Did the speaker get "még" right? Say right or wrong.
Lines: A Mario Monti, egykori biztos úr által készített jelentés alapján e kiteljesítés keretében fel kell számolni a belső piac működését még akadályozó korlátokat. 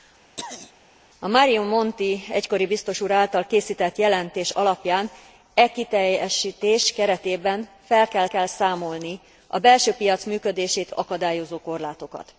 wrong